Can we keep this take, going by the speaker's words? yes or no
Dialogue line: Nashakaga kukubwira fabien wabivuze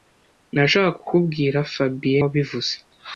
yes